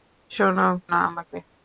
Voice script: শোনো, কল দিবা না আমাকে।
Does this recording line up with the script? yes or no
no